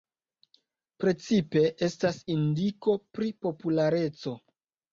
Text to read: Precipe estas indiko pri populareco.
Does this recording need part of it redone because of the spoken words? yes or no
no